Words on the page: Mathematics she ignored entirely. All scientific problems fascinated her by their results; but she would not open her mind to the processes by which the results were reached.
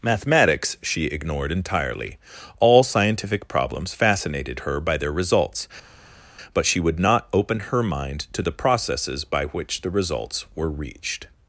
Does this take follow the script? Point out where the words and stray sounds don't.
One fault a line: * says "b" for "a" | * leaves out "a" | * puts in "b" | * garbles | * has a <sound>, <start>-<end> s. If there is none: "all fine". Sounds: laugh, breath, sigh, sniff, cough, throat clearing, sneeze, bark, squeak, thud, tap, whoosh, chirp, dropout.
all fine